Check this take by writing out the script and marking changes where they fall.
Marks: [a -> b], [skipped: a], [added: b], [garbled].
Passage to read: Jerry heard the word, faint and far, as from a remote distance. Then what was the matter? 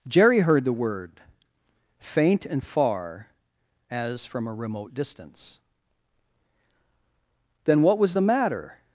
Jerry heard the word, faint and far, as from a remote distance. Then what was the matter?